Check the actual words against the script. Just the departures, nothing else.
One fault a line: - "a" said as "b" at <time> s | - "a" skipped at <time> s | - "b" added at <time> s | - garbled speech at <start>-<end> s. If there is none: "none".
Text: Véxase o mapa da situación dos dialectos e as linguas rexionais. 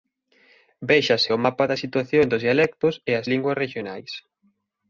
none